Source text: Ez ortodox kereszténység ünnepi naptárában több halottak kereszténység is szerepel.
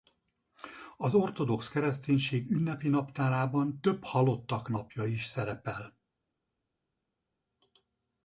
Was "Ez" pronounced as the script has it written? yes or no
no